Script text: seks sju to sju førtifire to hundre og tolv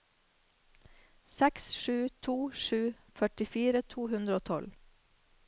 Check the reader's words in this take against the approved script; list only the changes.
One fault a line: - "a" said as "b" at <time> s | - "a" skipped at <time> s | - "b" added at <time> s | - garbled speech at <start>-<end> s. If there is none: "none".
none